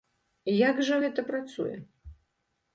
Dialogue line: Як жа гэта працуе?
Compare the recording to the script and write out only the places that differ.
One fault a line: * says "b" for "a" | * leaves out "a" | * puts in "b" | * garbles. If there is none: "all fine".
all fine